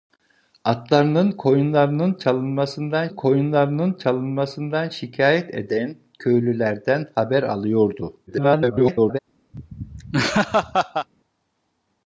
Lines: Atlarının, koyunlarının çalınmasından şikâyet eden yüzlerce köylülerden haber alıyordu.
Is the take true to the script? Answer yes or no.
no